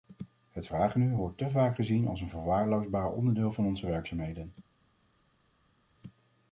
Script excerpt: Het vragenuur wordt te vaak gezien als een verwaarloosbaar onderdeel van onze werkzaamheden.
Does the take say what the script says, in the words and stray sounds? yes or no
yes